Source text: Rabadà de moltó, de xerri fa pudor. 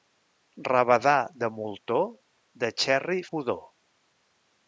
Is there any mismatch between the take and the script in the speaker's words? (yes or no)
yes